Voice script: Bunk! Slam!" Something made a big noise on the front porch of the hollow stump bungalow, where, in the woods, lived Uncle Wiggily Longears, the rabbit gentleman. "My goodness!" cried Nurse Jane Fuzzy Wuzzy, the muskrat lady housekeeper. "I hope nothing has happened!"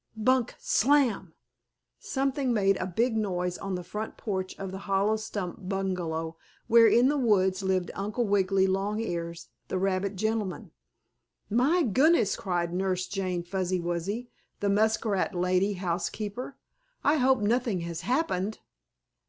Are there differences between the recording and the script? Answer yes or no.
no